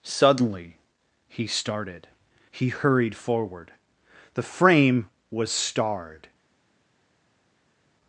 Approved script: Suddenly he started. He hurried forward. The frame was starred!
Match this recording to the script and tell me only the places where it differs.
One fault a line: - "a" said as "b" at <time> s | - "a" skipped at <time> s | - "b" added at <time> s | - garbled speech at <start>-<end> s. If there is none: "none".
none